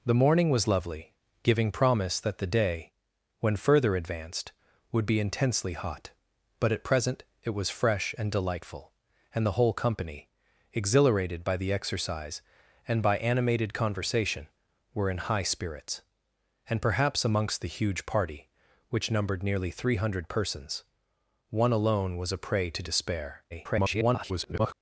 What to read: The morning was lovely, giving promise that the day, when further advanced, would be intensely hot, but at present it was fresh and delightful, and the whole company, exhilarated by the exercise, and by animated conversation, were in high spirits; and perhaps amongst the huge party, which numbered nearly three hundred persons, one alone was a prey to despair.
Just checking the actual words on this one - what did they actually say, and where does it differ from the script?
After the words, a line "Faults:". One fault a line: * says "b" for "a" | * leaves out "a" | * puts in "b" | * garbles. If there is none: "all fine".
The morning was lovely, giving promise that the day, when further advanced, would be intensely hot, but at present it was fresh and delightful, and the whole company, exhilarated by the exercise, and by animated conversation, were in high spirits; and perhaps amongst the huge party, which numbered nearly three hundred persons, one alone was a prey to despair. [garbled]
Faults:
* garbles